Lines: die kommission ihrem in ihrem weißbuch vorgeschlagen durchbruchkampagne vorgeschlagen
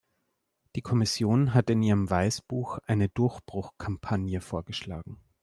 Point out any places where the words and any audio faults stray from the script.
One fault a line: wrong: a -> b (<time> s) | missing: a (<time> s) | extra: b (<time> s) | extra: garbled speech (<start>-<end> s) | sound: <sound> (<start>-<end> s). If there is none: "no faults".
wrong: ihrem -> hat (1.5 s)
wrong: vorgeschlagen -> eine (2.9 s)